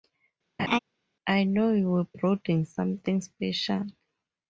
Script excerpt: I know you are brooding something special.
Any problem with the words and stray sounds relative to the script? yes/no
yes